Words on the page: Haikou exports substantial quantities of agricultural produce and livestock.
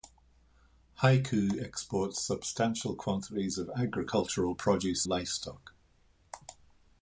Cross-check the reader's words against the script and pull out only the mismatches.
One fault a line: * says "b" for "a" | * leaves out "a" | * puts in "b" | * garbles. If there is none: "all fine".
* leaves out "and"